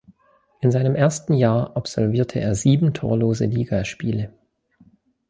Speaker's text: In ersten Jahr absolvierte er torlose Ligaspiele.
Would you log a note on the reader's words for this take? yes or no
yes